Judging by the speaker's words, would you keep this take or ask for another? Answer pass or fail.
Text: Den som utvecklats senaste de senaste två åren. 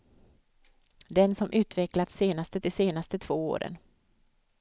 pass